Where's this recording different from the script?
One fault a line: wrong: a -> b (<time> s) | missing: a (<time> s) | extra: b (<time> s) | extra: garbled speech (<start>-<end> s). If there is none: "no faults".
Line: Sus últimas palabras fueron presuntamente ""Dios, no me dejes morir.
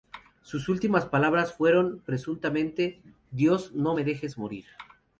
no faults